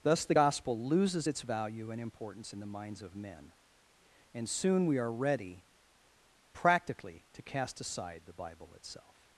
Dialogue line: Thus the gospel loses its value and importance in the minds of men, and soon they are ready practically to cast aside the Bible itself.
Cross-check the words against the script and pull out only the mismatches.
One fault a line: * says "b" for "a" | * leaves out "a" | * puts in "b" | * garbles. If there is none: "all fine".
* says "we" for "they"